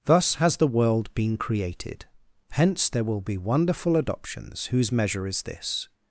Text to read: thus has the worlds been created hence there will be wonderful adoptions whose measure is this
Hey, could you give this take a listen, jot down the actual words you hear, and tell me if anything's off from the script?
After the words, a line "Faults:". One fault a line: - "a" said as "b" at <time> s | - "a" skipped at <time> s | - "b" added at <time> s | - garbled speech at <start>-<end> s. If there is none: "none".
thus has the world been created hence there will be wonderful adoptions whose measure is this
Faults:
- "worlds" said as "world" at 0.7 s